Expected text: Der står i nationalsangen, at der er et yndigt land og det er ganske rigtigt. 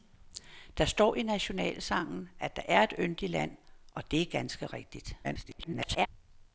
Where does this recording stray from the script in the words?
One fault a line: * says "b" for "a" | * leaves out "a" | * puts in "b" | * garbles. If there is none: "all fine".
* garbles